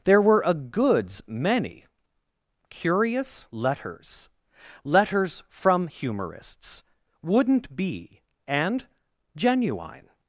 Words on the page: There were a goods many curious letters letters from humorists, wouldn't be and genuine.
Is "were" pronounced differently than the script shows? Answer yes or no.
no